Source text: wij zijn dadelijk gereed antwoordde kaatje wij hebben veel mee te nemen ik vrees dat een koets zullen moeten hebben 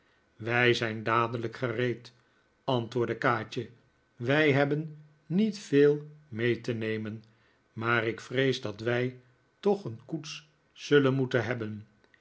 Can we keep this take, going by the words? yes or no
no